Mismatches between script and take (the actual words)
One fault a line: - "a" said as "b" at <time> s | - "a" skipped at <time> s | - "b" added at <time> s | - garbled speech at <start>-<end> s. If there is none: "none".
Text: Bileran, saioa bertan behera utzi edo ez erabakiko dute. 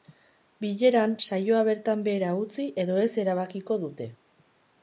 none